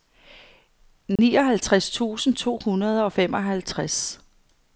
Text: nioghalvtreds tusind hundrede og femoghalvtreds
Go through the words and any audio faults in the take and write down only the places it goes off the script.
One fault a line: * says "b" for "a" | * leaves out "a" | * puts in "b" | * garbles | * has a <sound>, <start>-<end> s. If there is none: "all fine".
* has a dropout, 1.2-1.2 s
* puts in "to"